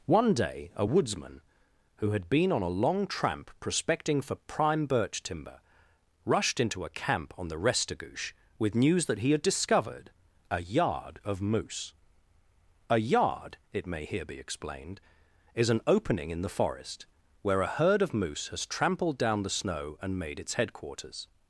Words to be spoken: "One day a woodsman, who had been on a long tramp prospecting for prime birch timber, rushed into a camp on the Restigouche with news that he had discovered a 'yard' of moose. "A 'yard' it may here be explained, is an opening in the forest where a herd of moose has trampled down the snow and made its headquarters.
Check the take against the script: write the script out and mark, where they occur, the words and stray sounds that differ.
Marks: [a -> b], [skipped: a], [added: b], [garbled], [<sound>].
"One day a woodsman, who had been on a long tramp prospecting for prime birch timber, rushed into a camp on the Restigouche with news that he had discovered a 'yard' of moose. "A 'yard' it may here be explained, is an opening in the forest where a herd of moose has trampled down the snow and made its headquarters.